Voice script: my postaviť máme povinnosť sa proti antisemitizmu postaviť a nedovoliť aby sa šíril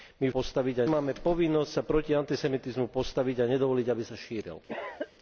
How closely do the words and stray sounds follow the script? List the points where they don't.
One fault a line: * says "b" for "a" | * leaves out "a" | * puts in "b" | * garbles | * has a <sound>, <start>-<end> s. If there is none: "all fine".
* has a cough, 4.7-5.1 s